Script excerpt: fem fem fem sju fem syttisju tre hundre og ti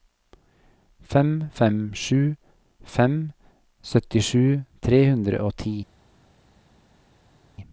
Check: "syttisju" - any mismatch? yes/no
no